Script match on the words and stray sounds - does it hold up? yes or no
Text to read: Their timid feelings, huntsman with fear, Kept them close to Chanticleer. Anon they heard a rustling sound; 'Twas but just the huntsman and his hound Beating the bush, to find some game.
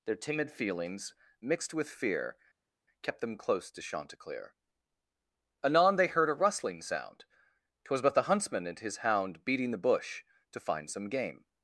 no